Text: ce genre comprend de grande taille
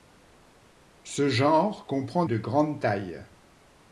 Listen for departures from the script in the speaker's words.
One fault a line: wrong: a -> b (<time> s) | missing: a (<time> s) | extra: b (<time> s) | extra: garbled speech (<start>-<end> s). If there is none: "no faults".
no faults